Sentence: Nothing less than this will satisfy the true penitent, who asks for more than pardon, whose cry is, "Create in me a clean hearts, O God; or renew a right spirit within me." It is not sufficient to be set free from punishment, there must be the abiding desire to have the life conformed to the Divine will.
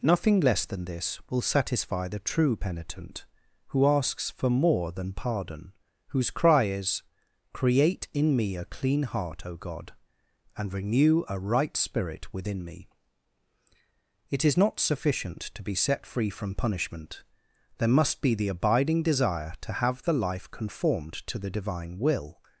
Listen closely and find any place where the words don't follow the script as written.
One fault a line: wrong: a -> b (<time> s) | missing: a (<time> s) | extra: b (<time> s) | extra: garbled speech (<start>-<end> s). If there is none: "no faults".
wrong: hearts -> heart (9.0 s)
wrong: or -> and (10.6 s)